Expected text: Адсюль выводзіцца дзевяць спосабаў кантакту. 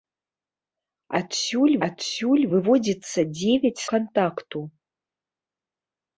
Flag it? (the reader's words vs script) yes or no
yes